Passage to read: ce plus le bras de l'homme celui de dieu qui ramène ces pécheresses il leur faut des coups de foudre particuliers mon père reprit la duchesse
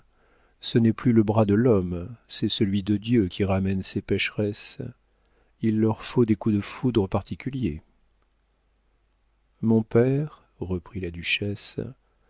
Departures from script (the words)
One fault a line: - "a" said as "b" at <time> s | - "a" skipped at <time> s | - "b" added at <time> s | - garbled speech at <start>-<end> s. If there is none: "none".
- "n'est" added at 0.8 s
- "c'est" added at 2.3 s